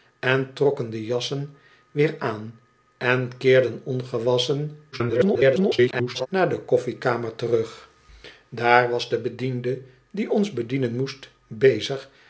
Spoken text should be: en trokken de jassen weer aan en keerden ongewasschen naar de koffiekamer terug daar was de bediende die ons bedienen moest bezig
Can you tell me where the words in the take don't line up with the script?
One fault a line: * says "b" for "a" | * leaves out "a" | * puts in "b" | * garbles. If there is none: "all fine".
* garbles